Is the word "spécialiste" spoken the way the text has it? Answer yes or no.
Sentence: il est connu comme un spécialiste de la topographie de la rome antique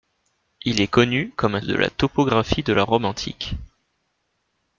no